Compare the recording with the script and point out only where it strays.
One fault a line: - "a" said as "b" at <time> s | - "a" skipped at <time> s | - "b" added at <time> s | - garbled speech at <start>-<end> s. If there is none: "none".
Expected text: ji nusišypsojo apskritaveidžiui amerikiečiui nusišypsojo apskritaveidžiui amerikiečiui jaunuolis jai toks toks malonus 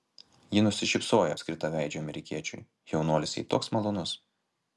- "nusišypsojo apskritaveidžiui amerikiečiui" skipped at 2.6 s
- "toks" skipped at 3.7 s